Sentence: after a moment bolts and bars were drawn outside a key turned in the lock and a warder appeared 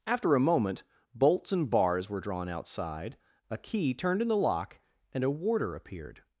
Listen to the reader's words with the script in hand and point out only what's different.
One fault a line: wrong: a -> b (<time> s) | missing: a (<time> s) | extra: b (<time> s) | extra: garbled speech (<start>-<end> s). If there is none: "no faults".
no faults